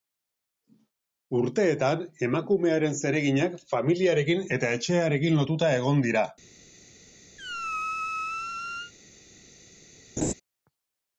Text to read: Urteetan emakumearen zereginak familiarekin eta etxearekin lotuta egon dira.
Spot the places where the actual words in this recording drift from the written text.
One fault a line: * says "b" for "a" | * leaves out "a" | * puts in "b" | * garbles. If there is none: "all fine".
all fine